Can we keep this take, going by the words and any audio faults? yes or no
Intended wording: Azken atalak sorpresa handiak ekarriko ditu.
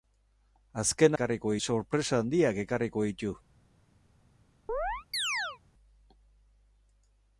no